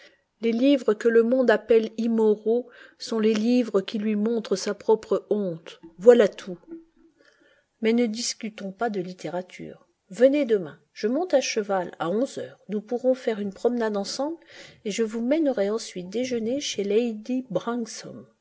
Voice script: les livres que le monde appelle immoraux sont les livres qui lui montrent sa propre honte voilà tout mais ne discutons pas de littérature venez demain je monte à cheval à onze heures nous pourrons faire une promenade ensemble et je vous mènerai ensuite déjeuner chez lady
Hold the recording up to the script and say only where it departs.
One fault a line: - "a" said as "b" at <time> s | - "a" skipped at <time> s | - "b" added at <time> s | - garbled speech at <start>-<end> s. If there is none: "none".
none